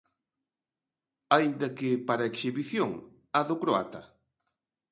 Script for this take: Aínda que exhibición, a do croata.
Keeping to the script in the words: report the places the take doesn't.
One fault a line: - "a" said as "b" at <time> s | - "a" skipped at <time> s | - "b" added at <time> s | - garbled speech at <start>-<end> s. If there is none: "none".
- "para" added at 2.1 s